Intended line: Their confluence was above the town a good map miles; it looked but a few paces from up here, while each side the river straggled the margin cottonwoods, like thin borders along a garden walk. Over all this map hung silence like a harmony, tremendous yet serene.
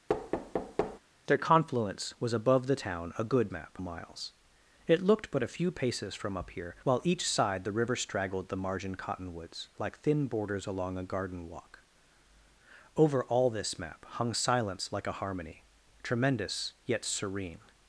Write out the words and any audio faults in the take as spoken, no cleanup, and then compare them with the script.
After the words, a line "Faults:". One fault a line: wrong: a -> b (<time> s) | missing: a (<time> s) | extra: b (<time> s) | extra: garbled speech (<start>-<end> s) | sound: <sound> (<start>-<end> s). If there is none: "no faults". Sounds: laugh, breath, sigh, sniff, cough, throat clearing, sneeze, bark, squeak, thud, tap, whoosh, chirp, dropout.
Their confluence was above the town a good map miles; it looked but a few paces from up here, while each side the river straggled the margin cottonwoods, like thin borders along a garden walk. Over all this map hung silence like a harmony, tremendous yet serene.
Faults:
sound: thud (0.1-1.0 s)